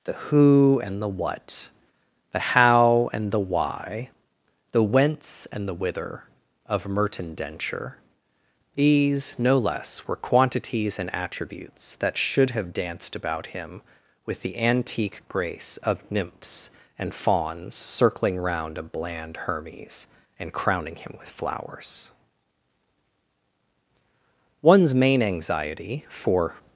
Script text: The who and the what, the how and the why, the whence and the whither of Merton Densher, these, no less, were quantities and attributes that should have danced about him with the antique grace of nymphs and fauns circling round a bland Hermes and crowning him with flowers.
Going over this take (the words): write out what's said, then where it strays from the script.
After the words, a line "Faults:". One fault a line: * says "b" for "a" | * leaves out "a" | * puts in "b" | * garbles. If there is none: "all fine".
The who and the what, the how and the why, the whence and the whither of Merton Densher, these, no less, were quantities and attributes that should have danced about him with the antique grace of nymphs and fauns circling round a bland Hermes and crowning him with flowers. One's main anxiety, for
Faults:
* puts in "One's main anxiety for"